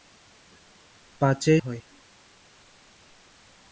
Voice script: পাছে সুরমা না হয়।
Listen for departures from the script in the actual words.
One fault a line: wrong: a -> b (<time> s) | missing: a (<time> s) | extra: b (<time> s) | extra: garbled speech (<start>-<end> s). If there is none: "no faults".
missing: সুরমা না (1.6 s)